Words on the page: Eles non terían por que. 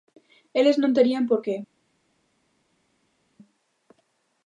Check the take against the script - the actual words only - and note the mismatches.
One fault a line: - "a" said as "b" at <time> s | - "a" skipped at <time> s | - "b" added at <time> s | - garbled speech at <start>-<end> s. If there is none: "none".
none